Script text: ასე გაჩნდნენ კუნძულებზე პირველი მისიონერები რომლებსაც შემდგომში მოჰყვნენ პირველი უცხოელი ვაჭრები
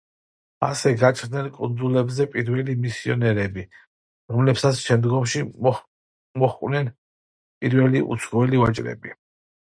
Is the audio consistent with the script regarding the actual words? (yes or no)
yes